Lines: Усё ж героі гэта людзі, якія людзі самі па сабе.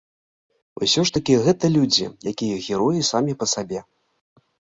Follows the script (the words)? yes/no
no